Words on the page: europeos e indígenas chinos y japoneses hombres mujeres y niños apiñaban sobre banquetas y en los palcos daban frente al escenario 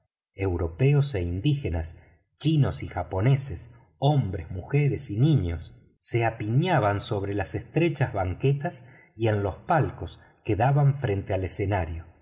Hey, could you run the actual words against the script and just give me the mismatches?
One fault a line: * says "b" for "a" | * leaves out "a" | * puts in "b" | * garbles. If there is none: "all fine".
* puts in "se"
* puts in "las estrechas"
* puts in "que"